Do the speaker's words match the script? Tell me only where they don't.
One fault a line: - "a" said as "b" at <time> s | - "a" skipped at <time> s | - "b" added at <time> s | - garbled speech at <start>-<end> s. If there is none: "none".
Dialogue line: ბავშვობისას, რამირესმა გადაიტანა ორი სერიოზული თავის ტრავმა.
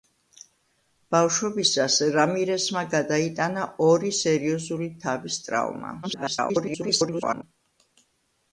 - garbled speech at 6.0-7.4 s